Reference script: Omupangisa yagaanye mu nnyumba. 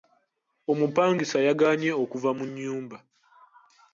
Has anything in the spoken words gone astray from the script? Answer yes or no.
yes